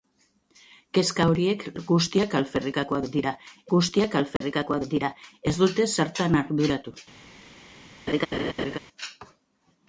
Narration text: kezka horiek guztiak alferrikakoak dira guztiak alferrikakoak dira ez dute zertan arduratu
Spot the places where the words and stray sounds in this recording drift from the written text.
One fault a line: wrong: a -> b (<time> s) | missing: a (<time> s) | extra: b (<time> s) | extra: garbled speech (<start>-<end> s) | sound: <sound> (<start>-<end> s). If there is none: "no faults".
sound: dropout (4.4-4.4 s)
sound: laugh (8.1-8.8 s)